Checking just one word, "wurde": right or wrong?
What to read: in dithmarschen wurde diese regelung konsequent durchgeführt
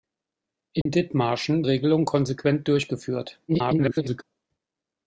wrong